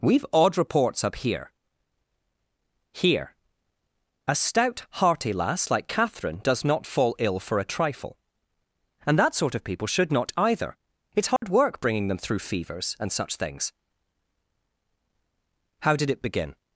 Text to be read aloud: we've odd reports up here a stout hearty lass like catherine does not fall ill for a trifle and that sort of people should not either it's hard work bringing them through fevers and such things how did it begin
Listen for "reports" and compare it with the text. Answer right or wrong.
right